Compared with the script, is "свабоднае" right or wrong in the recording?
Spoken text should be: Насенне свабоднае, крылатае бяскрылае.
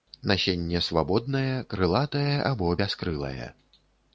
right